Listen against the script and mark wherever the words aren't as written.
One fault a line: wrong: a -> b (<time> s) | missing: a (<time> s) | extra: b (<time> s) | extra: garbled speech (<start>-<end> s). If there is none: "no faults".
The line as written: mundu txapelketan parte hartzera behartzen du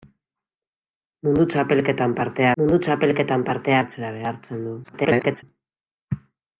extra: mundu txapelketan parte (2.6 s)
extra: garbled speech (4.8-5.4 s)